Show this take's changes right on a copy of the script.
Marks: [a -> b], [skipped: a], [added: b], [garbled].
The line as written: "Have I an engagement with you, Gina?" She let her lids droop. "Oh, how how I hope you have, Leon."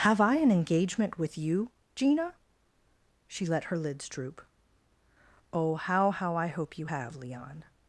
"Have I an engagement with you, Gina?" She let her lids droop. "Oh, how how I hope you have, Leon."